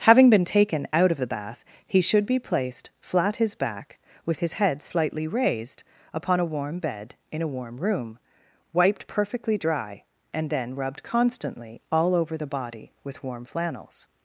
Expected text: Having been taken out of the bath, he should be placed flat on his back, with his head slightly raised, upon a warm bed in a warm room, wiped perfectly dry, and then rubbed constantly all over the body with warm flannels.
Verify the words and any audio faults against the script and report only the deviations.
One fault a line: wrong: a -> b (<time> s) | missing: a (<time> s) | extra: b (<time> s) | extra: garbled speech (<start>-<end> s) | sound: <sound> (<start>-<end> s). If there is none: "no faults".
missing: on (3.4 s)